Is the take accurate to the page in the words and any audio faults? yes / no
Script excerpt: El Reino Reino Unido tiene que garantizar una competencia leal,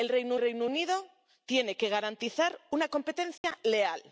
no